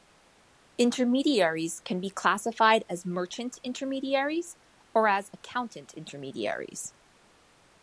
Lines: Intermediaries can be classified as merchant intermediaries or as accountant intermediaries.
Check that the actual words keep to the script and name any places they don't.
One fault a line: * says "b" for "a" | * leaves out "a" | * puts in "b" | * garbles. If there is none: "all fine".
all fine